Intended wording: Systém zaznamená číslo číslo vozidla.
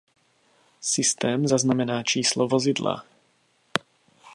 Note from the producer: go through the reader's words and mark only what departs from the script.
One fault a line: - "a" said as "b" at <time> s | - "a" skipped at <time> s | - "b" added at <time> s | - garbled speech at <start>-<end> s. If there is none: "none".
- "číslo" skipped at 2.5 s